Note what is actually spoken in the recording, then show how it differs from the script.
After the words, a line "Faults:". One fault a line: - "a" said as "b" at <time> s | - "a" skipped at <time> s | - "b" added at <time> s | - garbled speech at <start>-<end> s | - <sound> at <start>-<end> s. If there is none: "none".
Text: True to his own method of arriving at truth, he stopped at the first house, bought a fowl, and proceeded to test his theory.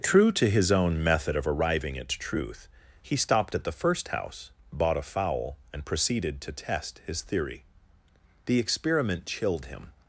True to his own method of arriving at truth, he stopped at the first house, bought a fowl, and proceeded to test his theory. The experiment chilled him
Faults:
- "The experiment chilled him" added at 8.4 s